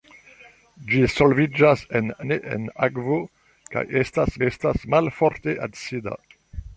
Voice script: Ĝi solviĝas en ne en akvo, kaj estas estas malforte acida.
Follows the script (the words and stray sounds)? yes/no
yes